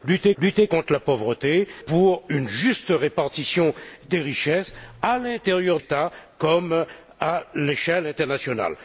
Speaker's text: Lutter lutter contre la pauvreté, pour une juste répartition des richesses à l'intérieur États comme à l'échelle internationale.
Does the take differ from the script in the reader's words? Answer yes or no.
no